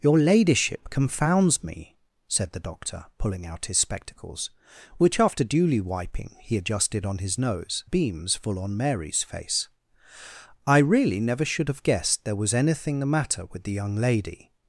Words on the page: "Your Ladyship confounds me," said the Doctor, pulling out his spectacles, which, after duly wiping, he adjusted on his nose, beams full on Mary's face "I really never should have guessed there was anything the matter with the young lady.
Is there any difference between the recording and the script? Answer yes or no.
no